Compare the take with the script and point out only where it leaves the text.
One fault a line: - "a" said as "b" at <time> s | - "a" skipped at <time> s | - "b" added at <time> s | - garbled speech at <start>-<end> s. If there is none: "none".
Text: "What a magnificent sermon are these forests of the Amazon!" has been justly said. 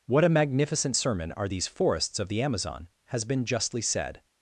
none